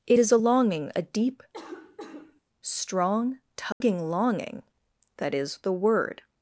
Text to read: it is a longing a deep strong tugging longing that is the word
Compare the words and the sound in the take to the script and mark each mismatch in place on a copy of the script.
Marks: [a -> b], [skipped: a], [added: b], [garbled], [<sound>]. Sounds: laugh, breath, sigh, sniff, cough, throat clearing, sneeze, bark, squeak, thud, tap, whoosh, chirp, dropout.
it is a longing a deep [cough] strong tugging [dropout] longing that is the word